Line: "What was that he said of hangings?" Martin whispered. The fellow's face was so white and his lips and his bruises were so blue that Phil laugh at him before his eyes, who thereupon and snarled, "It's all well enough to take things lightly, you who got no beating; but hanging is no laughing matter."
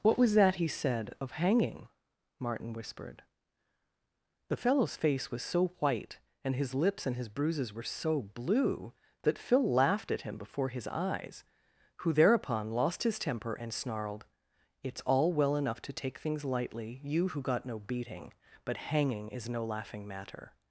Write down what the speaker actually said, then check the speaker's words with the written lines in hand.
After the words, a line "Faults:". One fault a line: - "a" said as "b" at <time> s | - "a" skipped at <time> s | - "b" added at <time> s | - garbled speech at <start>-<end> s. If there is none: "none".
"What was that he said of hanging?" Martin whispered. The fellow's face was so white and his lips and his bruises were so blue that Phil laughed at him before his eyes, who thereupon lost his temper and snarled, "It's all well enough to take things lightly, you who got no beating; but hanging is no laughing matter."
Faults:
- "hangings" said as "hanging" at 1.3 s
- "laugh" said as "laughed" at 9.6 s
- "lost his temper" added at 12.7 s